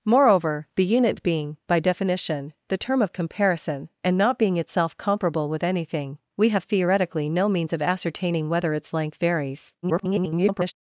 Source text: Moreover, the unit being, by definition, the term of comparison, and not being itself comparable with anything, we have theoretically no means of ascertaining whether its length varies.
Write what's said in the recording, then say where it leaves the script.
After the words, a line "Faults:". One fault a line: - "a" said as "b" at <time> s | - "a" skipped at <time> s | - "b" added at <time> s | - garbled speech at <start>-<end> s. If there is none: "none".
Moreover, the unit being, by definition, the term of comparison, and not being itself comparable with anything, we have theoretically no means of ascertaining whether its length varies. [garbled]
Faults:
- garbled speech at 9.8-10.7 s